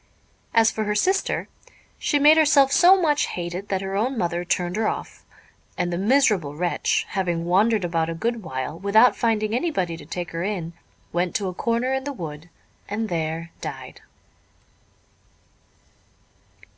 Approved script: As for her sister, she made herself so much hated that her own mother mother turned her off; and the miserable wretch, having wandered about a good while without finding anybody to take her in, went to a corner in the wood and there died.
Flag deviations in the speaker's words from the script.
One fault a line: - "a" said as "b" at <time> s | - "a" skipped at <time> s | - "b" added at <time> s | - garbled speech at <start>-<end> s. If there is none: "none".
- "mother" skipped at 4.4 s